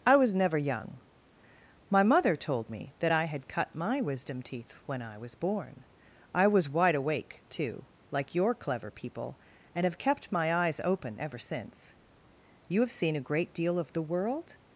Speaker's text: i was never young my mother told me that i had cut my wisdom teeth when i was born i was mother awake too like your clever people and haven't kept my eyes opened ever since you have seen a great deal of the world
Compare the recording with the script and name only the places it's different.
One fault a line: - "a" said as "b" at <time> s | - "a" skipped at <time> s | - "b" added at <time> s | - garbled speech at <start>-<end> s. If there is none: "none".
- "mother" said as "wide" at 6.7 s
- "haven't" said as "have" at 9.8 s
- "opened" said as "open" at 10.8 s